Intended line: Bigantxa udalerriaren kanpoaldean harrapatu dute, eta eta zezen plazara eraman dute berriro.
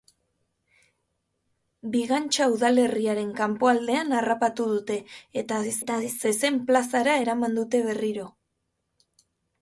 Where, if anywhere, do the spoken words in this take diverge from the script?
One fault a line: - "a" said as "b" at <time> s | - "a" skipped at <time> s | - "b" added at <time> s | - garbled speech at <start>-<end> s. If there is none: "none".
none